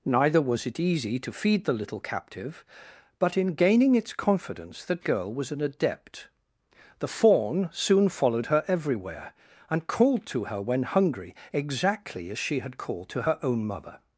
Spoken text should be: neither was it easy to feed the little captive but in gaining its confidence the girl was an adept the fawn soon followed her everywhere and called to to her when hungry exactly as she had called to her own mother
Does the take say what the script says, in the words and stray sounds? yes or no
no